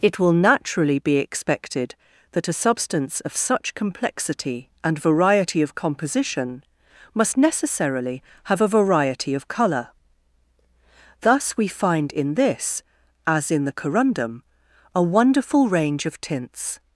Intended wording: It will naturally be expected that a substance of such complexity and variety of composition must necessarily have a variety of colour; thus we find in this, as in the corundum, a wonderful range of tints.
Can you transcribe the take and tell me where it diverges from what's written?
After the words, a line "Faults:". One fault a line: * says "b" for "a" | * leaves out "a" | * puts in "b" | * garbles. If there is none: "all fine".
It will naturally be expected that a substance of such complexity and variety of composition must necessarily have a variety of colour; thus we find in this, as in the corundum, a wonderful range of tints.
Faults:
all fine